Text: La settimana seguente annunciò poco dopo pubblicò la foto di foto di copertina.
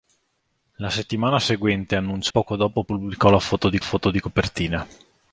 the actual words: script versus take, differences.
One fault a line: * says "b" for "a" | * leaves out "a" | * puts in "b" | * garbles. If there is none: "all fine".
all fine